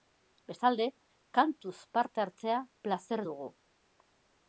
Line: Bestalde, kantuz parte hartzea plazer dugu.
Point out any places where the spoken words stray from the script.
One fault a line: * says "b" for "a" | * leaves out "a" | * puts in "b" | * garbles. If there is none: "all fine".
all fine